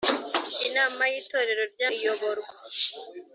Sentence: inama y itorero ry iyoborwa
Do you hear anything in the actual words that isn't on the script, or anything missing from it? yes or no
no